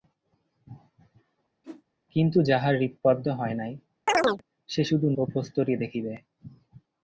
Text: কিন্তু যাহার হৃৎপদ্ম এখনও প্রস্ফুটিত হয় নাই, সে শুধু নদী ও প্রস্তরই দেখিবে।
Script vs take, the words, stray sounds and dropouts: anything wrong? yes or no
yes